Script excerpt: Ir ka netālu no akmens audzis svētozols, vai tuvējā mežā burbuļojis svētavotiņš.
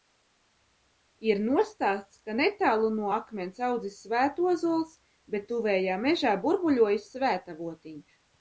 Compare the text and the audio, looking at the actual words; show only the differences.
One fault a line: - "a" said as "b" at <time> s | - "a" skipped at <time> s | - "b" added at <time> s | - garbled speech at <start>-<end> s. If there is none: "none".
- "nostāsts" added at 1.4 s
- "vai" said as "bet" at 5.3 s